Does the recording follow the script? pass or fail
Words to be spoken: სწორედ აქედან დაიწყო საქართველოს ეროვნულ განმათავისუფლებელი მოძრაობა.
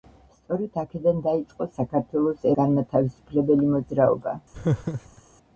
fail